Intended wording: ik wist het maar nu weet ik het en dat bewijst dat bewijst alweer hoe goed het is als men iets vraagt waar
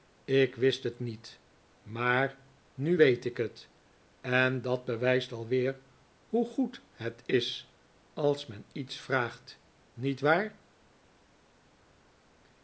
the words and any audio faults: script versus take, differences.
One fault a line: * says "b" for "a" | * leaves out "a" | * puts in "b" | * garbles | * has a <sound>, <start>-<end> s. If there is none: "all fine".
* puts in "niet"
* leaves out "dat bewijst"
* puts in "niet"